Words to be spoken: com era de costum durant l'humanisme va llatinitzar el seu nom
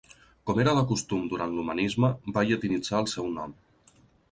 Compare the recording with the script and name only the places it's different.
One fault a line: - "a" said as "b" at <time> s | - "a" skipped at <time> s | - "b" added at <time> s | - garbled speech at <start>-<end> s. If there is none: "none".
none